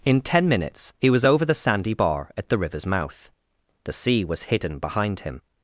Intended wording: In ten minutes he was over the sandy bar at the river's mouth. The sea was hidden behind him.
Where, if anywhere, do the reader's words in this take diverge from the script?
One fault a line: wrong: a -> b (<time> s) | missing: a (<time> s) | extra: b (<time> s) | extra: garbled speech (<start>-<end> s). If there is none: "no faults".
no faults